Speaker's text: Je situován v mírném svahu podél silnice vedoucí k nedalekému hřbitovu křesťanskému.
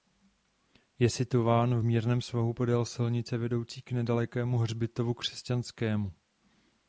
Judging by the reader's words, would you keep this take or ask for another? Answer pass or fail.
pass